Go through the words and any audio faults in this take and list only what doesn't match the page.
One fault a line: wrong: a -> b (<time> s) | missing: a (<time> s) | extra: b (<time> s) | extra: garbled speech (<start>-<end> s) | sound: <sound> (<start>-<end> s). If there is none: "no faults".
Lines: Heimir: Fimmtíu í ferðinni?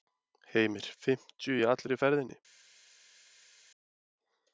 extra: allri (1.7 s)